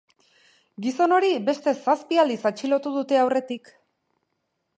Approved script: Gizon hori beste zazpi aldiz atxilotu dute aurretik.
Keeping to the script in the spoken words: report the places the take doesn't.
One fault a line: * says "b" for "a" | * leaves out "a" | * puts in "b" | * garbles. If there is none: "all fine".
all fine